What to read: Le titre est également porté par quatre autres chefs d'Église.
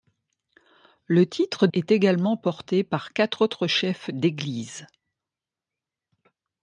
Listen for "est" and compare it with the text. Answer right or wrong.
right